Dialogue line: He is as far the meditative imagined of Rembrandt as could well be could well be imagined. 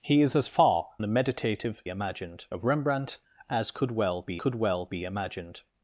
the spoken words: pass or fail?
pass